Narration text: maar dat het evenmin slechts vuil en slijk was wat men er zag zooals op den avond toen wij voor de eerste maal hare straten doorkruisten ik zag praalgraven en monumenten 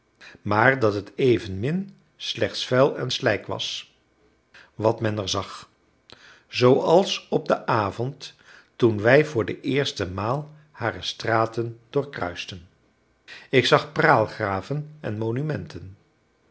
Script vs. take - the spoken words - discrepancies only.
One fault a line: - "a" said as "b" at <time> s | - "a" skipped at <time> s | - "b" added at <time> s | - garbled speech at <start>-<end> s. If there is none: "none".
none